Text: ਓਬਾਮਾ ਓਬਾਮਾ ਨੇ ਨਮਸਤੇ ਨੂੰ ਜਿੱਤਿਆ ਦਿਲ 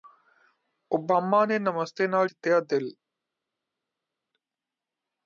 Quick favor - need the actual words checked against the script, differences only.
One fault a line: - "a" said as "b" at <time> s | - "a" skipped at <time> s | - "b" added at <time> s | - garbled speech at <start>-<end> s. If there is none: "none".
- "ਓਬਾਮਾ" skipped at 1.4 s
- "ਨੂੰ" said as "ਨਾਲ" at 2.1 s